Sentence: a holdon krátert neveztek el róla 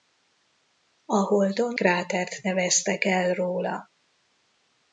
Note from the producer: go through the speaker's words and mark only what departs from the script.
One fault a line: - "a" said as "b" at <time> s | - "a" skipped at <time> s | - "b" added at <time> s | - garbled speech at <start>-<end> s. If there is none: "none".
none